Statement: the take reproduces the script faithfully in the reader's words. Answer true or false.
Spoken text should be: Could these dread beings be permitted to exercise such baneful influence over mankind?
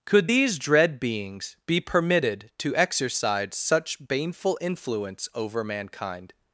true